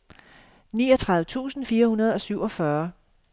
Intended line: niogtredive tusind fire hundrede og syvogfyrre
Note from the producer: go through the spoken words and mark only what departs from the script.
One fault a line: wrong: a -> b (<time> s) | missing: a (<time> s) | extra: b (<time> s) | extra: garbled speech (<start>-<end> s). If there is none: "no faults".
no faults